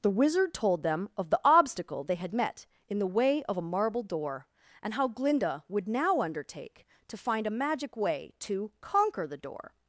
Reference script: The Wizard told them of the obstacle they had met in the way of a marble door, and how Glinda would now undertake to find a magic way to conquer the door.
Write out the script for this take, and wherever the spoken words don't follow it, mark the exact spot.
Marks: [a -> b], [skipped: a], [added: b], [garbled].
The Wizard told them of the obstacle they had met in the way of a marble door, and how Glinda would now undertake to find a magic way to conquer the door.